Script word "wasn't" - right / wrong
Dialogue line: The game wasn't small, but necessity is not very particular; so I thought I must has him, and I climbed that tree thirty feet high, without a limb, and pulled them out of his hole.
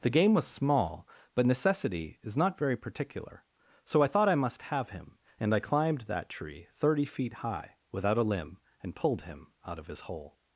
wrong